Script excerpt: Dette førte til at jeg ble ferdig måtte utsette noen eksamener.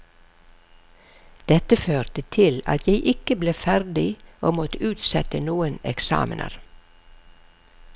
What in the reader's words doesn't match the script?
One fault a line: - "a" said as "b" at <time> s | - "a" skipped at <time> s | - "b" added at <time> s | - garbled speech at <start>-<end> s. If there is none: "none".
- "ikke" added at 3.1 s
- "og" added at 4.4 s